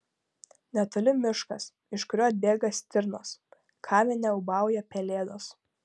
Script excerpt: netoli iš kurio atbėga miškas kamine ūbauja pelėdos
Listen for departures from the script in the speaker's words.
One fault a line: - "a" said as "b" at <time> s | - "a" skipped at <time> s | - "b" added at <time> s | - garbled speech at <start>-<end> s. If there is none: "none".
- "miškas" added at 1.2 s
- "miškas" said as "stirnos" at 2.8 s